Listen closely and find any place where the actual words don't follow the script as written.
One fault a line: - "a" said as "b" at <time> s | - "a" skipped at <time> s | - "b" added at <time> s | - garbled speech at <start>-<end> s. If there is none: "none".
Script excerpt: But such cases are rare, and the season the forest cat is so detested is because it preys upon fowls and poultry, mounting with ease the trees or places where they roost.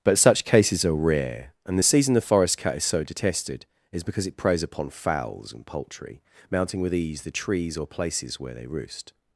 none